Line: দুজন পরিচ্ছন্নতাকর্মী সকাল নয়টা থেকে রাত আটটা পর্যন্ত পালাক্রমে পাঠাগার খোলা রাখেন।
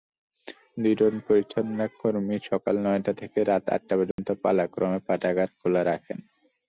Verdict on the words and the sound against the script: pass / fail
fail